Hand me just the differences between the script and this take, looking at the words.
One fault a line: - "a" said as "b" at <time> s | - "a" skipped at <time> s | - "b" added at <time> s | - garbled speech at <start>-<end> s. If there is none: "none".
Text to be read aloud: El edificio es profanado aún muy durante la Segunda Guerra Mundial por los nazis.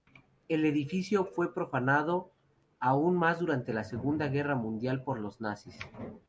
- "es" said as "fue" at 1.2 s
- "muy" said as "más" at 3.2 s